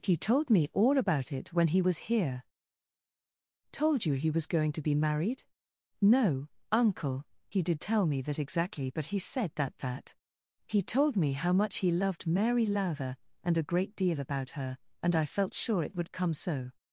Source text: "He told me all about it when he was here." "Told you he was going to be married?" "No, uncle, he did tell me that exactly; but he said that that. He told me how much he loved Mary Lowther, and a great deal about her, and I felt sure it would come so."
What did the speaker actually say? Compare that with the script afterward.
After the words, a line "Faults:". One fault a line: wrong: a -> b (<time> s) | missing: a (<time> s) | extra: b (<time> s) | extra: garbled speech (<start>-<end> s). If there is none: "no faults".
"He told me all about it when he was here." "Told you he was going to be married?" "No, uncle, he did tell me that exactly; but he said that that. He told me how much he loved Mary Lowther, and a great deal about her, and I felt sure it would come so."
Faults:
no faults